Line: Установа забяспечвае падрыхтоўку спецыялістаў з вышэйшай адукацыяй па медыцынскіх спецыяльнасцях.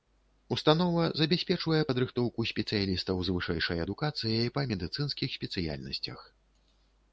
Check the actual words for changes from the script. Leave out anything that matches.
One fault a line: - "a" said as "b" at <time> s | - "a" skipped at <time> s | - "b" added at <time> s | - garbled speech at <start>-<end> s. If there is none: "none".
none